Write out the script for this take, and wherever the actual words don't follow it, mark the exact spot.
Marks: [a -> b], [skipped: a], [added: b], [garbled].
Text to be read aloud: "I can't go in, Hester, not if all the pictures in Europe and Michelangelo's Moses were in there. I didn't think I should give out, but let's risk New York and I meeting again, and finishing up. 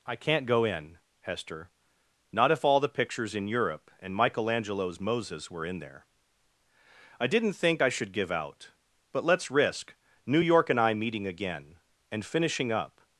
"I can't go in, Hester, not if all the pictures in Europe and Michelangelo's Moses were in there. I didn't think I should give out, but let's risk New York and I meeting again, and finishing up.